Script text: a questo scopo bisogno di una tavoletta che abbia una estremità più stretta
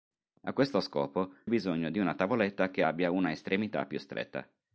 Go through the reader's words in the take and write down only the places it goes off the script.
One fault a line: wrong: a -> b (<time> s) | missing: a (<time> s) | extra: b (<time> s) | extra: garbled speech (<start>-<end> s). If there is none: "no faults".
no faults